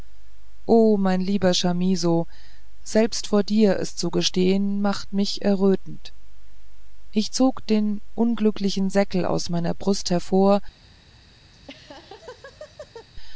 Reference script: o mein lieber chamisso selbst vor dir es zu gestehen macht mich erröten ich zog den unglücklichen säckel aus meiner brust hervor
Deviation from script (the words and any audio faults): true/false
true